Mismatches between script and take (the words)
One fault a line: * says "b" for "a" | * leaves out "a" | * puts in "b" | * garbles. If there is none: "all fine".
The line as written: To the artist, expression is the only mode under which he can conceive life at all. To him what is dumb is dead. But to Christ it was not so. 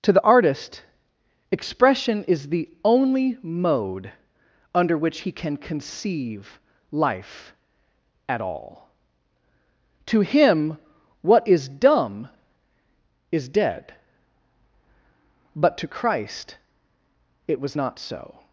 all fine